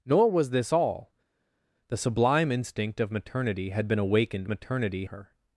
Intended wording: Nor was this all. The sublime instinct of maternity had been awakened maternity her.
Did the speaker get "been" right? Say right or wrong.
right